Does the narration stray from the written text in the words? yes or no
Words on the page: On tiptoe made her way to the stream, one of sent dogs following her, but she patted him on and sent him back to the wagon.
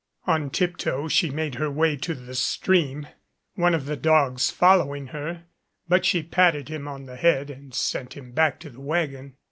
yes